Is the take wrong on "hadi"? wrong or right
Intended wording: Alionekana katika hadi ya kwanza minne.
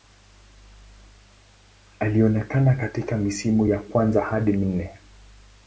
wrong